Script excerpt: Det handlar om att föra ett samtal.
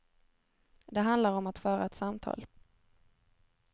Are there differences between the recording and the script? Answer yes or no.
no